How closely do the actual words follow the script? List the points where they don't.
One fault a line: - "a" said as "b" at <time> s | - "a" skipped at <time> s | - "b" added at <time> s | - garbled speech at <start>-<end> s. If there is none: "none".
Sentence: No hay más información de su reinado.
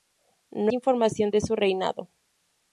- "hay más" skipped at 0.7 s